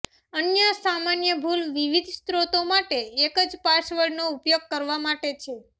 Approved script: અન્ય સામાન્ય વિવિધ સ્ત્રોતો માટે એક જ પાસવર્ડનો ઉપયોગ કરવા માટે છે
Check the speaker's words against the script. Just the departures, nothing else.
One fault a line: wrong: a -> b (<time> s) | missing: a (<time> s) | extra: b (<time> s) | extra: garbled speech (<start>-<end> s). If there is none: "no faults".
extra: ભૂલ (1.4 s)